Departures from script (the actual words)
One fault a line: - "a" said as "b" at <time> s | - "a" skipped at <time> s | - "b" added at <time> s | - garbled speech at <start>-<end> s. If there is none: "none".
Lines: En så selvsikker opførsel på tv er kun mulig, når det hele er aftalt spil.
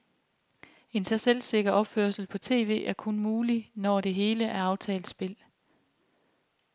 none